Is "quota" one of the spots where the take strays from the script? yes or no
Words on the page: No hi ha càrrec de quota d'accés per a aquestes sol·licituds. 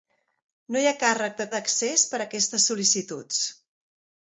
yes